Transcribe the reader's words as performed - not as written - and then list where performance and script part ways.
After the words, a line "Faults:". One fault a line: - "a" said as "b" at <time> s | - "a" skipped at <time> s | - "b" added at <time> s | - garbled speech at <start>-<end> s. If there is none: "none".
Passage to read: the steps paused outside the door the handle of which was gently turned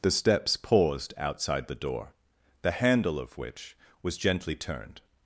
the steps paused outside the door the handle of which was gently turned
Faults:
none